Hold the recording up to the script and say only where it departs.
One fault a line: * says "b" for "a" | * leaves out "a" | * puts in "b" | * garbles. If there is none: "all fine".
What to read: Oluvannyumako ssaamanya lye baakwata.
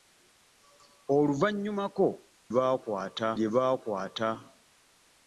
* says "baakwata" for "ssaamanya"